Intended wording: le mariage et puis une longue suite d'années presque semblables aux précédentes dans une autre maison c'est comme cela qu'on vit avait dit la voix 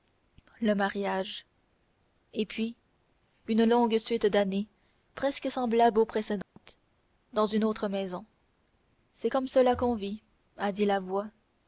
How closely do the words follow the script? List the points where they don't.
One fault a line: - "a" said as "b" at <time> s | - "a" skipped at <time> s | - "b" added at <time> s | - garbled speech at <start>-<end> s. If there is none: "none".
- "avait" said as "a" at 10.6 s